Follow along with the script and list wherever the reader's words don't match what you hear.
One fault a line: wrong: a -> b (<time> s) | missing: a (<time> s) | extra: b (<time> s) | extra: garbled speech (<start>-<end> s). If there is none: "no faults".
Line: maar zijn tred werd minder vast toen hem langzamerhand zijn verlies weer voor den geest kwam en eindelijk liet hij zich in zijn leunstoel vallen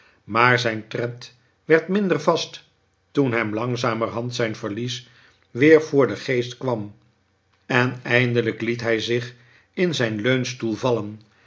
no faults